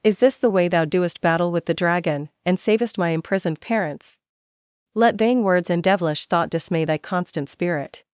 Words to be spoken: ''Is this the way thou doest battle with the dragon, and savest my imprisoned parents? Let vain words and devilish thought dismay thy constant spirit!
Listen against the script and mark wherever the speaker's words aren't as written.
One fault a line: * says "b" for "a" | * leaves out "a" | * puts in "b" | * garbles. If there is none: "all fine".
all fine